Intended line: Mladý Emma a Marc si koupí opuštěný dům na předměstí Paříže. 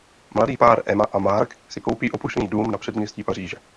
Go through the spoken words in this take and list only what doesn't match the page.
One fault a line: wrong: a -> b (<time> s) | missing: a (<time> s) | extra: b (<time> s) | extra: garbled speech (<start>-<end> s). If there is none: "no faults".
extra: pár (0.6 s)